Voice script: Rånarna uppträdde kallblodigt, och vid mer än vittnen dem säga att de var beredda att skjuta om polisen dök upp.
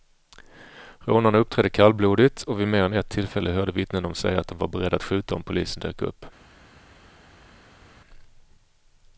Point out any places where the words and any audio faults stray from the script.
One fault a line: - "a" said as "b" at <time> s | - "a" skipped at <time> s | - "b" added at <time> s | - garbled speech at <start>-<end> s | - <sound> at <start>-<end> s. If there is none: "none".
- "ett tillfälle hörde" added at 2.9 s